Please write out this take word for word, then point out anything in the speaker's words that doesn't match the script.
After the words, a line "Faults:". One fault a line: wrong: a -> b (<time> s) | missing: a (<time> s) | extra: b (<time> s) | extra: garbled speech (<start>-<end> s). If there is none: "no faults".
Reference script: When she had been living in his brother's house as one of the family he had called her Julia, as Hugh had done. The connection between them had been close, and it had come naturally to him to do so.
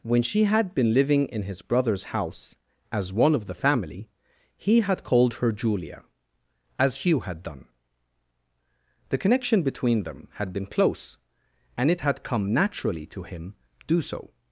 When she had been living in his brother's house as one of the family he had called her Julia, as Hugh had done. The connection between them had been close, and it had come naturally to him do so.
Faults:
missing: to (13.5 s)